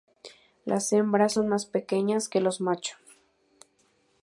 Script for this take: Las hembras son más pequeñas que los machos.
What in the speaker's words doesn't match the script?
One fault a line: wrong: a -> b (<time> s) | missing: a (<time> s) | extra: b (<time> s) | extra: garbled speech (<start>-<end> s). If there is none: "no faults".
no faults